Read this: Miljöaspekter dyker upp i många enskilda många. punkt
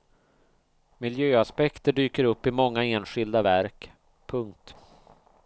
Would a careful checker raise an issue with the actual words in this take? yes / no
yes